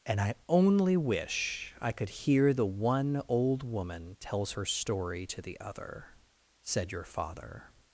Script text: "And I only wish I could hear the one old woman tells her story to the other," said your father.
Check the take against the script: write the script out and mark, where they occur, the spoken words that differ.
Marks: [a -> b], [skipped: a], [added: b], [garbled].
"And I only wish I could hear the one old woman tells her story to the other," said your father.